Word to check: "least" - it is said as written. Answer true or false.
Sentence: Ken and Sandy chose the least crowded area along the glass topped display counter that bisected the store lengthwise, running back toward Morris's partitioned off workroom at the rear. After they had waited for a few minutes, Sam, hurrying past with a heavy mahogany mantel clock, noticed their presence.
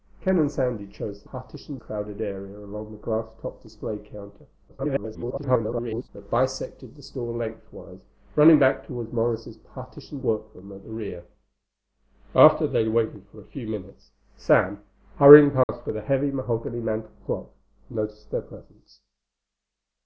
false